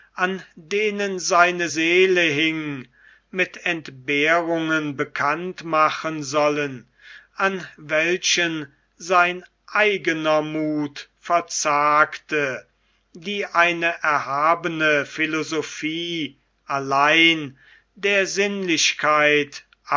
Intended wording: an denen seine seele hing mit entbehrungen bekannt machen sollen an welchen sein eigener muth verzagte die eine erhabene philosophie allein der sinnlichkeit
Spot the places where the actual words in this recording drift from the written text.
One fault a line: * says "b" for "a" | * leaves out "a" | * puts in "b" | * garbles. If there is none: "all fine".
all fine